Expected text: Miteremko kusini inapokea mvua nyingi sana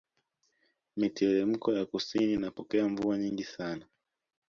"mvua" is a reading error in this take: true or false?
false